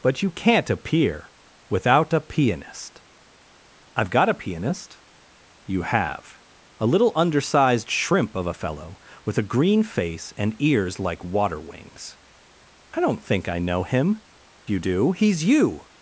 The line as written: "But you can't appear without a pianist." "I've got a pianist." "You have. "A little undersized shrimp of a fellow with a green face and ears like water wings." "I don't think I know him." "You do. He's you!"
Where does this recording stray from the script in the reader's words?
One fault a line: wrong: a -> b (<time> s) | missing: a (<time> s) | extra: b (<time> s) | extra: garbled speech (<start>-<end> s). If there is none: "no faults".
no faults